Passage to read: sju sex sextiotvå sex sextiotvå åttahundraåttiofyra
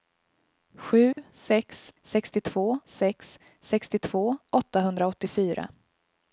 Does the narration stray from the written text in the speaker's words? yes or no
no